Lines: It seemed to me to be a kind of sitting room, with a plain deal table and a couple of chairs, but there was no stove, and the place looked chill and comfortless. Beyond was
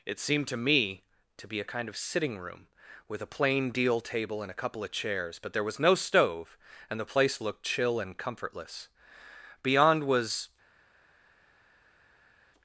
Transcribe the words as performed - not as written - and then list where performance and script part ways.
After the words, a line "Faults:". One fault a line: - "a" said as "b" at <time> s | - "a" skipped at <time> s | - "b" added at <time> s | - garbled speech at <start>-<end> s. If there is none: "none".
It seemed to me to be a kind of sitting room, with a plain deal table and a couple of chairs, but there was no stove, and the place looked chill and comfortless. Beyond was
Faults:
none